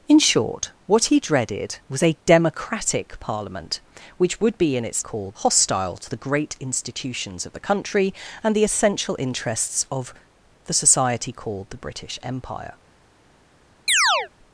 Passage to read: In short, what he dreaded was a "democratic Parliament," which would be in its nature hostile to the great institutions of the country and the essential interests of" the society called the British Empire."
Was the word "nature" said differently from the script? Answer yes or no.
yes